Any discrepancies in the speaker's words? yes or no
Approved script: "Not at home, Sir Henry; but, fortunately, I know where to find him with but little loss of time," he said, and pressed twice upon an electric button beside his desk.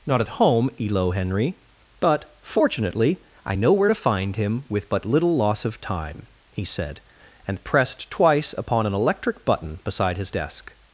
yes